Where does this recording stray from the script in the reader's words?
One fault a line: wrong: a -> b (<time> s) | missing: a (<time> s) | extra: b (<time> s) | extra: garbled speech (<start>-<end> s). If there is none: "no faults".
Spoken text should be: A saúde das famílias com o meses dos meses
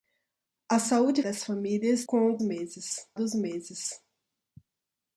no faults